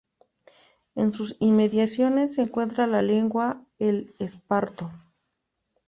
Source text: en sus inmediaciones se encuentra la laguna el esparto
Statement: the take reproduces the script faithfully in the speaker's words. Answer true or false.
true